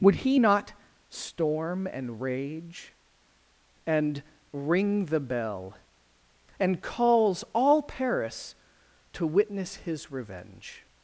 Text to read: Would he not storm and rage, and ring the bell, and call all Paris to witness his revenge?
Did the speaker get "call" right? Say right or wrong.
wrong